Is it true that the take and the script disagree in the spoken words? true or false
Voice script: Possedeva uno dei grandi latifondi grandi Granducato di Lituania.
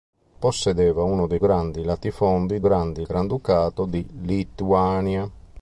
false